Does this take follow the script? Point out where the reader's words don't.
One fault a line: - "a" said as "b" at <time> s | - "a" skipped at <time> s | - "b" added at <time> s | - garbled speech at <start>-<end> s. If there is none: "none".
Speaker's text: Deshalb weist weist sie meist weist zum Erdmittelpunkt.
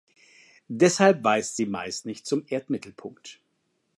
- "weist" skipped at 1.6 s
- "weist" said as "nicht" at 2.1 s